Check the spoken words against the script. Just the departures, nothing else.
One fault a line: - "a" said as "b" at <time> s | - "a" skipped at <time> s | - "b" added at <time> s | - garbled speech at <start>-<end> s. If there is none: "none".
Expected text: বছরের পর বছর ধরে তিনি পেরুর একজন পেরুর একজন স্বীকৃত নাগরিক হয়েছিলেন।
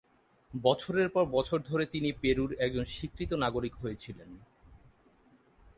- "পেরুর একজন" skipped at 2.9 s